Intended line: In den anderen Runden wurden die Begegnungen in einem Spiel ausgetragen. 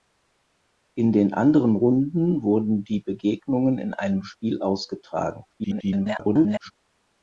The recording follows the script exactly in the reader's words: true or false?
false